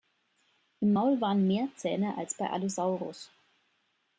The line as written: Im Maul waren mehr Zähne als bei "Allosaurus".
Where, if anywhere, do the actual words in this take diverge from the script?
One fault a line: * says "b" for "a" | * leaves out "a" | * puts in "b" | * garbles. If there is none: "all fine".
all fine